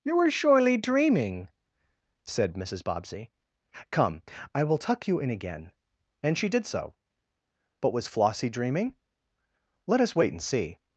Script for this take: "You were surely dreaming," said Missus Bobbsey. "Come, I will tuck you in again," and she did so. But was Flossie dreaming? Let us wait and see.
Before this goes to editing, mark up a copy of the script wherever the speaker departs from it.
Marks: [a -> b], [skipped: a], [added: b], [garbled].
"You were surely dreaming," said Missus Bobbsey. "Come, I will tuck you in again," and she did so. But was Flossie dreaming? Let us wait and see.